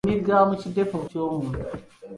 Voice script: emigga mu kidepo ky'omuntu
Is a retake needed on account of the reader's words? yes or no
no